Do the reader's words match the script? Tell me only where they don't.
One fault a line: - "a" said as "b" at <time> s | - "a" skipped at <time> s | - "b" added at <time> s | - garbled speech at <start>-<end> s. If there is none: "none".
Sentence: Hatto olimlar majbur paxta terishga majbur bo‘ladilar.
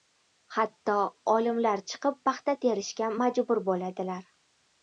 - "majbur" said as "chiqib" at 1.9 s